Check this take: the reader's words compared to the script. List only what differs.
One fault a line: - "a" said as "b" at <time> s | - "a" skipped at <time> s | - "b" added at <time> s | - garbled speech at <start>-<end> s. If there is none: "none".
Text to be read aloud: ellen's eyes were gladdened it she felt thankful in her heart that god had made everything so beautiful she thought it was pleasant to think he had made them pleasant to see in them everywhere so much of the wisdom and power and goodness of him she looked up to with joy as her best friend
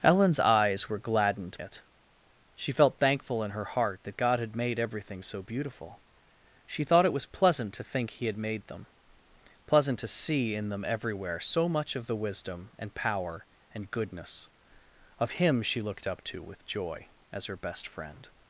none